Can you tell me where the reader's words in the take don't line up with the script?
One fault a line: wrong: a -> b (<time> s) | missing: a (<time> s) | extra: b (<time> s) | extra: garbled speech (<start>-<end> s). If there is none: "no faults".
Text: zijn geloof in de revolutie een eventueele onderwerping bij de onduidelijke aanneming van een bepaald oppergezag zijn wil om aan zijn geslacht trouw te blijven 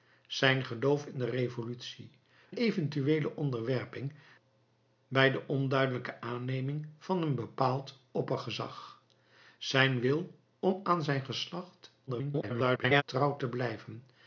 missing: een (2.1 s)
extra: garbled speech (12.1-13.0 s)